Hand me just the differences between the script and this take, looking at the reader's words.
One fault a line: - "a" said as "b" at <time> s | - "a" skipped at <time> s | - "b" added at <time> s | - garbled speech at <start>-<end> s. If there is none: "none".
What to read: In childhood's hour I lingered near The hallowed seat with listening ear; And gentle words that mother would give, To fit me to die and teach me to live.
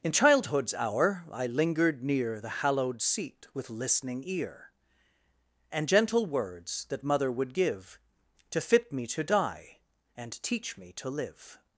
none